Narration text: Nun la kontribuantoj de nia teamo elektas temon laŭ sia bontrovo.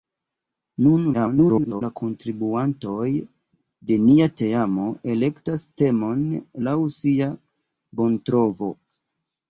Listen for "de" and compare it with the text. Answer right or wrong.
right